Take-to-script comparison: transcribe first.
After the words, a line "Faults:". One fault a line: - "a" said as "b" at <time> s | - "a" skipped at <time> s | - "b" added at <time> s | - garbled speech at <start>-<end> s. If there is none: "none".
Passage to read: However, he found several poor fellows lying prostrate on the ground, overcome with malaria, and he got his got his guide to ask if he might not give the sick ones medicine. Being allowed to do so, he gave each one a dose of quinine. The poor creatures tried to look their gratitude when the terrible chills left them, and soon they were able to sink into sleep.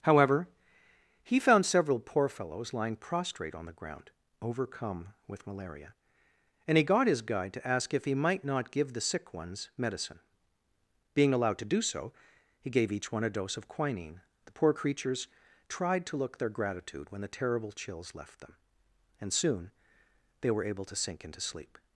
However, he found several poor fellows lying prostrate on the ground, overcome with malaria, and he got his guide to ask if he might not give the sick ones medicine. Being allowed to do so, he gave each one a dose of quinine. The poor creatures tried to look their gratitude when the terrible chills left them, and soon they were able to sink into sleep.
Faults:
- "got his" skipped at 7.2 s